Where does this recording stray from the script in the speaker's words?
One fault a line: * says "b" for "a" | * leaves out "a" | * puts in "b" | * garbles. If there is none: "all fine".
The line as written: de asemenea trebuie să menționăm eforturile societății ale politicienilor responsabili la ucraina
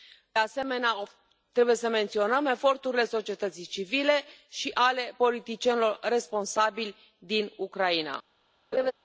* puts in "civile și"
* says "din" for "la"